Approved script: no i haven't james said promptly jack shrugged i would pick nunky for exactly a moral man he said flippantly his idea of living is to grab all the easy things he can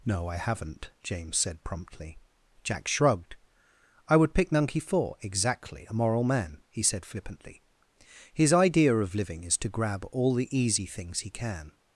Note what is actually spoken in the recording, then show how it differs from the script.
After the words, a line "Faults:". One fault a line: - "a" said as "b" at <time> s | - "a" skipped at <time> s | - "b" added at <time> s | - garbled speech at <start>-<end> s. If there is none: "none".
no i haven't james said promptly jack shrugged i would pick nunky for exactly a moral man he said flippantly his idea of living is to grab all the easy things he can
Faults:
none